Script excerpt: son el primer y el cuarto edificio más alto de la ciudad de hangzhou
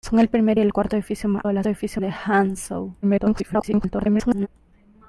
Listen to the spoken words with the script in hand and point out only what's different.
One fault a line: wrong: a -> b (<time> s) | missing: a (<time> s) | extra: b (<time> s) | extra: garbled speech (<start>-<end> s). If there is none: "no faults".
missing: alto (1.4 s)
wrong: ciudad -> edificio (1.7 s)
extra: garbled speech (3.0-4.5 s)